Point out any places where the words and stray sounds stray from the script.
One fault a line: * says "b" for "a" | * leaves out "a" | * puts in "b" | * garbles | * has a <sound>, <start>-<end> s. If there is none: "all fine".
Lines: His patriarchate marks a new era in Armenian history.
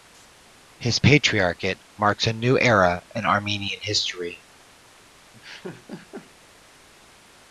* has a laugh, 5.3-6.3 s